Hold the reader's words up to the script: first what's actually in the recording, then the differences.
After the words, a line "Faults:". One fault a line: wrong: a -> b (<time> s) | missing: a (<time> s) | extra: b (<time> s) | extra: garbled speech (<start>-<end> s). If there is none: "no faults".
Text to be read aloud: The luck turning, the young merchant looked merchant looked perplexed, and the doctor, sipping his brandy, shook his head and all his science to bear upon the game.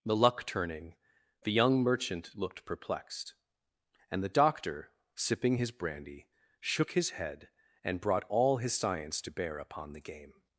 The luck turning, the young merchant looked perplexed, and the doctor, sipping his brandy, shook his head and brought all his science to bear upon the game.
Faults:
missing: merchant looked (2.6 s)
extra: brought (8.0 s)